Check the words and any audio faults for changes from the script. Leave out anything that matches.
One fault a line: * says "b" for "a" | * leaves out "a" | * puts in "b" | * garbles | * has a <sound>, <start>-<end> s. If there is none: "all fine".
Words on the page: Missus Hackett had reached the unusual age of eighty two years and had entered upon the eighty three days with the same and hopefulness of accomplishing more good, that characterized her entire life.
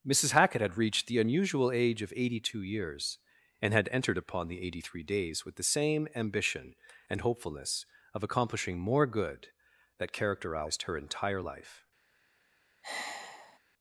* puts in "ambition"
* has a sigh, 12.8-13.6 s